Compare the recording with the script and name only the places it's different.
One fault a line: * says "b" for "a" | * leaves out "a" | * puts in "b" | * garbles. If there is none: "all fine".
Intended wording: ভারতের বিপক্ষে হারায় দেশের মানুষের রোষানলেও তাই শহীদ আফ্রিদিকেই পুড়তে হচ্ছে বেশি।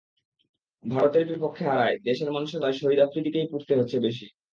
* leaves out "রোষানলেও"